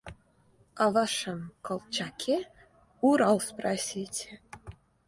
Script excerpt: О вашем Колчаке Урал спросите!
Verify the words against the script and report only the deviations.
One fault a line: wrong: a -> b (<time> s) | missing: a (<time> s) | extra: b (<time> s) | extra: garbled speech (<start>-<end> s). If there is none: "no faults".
no faults